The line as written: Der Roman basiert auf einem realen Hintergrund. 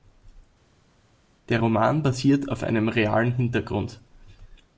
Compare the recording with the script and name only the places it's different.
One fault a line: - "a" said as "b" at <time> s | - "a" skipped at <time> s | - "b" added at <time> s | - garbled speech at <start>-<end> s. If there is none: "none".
none